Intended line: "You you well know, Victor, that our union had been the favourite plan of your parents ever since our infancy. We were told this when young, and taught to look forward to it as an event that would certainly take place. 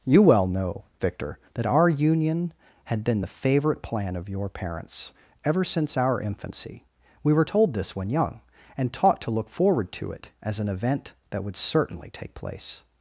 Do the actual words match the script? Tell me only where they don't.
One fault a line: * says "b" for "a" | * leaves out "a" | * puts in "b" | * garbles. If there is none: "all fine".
* leaves out "you"